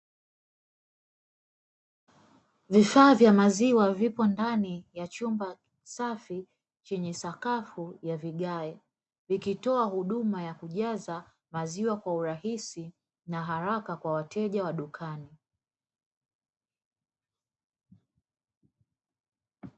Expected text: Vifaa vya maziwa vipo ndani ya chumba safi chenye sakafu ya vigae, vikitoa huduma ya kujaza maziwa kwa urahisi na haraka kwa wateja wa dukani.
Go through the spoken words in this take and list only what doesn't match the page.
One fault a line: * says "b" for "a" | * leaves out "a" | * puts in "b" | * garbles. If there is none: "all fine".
all fine